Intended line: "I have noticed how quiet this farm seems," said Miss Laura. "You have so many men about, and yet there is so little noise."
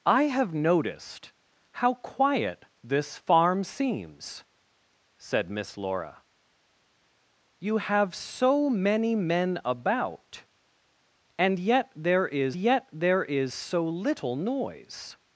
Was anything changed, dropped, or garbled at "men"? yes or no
no